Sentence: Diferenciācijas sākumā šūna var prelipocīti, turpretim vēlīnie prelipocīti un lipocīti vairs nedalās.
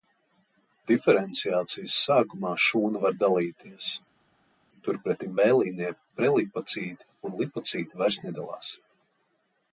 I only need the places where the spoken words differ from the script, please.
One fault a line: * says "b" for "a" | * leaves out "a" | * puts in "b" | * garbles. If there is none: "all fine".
* says "dalīties" for "prelipocīti"